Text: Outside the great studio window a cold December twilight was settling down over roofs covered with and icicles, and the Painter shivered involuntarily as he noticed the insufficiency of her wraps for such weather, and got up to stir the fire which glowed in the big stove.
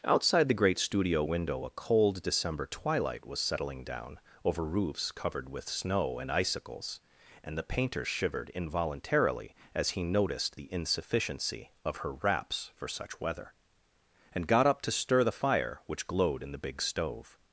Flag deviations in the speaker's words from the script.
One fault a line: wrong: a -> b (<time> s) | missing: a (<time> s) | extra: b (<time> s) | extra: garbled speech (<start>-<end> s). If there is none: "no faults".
extra: snow (5.7 s)